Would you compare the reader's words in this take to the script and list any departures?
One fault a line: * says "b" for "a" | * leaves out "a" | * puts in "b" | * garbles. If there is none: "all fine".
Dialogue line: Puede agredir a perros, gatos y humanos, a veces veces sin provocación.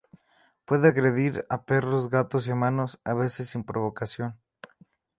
* leaves out "veces"